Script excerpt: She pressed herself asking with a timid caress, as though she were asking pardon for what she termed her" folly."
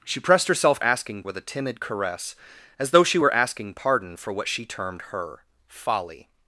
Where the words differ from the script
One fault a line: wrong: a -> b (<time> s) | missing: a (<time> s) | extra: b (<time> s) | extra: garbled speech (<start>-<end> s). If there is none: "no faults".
no faults